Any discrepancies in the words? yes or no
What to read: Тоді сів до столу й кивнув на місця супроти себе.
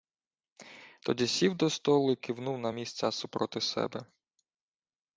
no